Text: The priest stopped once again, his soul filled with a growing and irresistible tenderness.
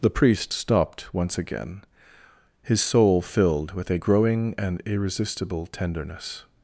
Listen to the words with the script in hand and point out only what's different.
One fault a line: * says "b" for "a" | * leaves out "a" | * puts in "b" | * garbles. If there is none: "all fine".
all fine